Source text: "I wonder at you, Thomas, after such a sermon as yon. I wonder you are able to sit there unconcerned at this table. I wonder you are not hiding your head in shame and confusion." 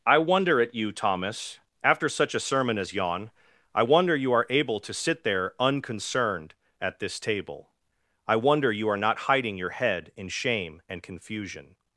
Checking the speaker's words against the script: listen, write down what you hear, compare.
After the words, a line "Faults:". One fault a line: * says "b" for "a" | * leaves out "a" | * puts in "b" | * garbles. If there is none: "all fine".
"I wonder at you, Thomas, after such a sermon as yon. I wonder you are able to sit there unconcerned at this table. I wonder you are not hiding your head in shame and confusion."
Faults:
all fine